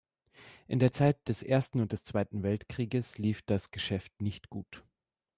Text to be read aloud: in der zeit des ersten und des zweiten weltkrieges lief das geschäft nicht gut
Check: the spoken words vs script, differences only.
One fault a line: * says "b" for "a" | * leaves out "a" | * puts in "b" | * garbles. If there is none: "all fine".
all fine